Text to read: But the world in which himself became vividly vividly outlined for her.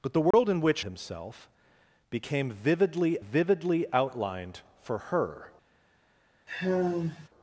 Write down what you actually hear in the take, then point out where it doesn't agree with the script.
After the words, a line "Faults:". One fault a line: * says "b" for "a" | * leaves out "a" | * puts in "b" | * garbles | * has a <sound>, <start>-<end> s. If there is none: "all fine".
But the world in which himself became vividly vividly outlined for her.
Faults:
* has a dropout, 0.3-0.3 s
* has a sigh, 6.5-7.3 s